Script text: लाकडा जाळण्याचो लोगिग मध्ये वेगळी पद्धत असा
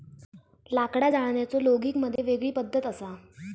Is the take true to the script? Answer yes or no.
yes